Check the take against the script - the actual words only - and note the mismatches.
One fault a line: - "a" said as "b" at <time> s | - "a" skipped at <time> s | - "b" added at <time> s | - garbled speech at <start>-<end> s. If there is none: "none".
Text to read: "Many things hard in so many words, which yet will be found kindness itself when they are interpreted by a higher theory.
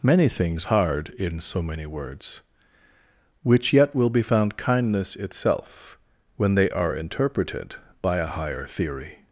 none